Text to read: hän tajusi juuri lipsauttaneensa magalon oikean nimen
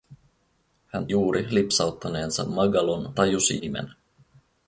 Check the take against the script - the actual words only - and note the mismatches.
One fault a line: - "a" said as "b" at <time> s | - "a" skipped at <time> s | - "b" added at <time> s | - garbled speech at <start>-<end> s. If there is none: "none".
- "tajusi" skipped at 1.1 s
- "oikean" said as "tajusi" at 3.1 s